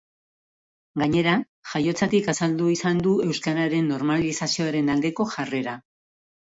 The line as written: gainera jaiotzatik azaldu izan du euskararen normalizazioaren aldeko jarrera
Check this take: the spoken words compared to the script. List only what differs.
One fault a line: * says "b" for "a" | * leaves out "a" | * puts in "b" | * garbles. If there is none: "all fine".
all fine